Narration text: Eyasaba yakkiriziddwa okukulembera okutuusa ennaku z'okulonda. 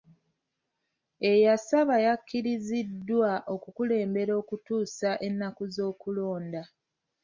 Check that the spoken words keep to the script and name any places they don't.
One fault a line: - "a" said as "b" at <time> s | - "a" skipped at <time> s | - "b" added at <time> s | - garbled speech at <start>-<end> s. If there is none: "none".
none